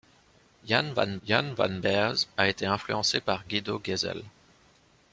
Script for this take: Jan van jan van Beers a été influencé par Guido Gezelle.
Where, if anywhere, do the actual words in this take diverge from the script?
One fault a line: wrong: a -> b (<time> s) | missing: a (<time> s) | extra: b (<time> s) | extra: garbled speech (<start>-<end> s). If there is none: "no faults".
no faults